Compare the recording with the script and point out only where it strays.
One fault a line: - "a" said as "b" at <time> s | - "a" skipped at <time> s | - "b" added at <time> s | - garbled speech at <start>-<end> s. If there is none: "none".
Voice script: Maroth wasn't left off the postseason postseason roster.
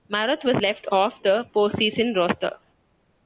- "wasn't" said as "was" at 0.4 s
- "postseason" skipped at 2.2 s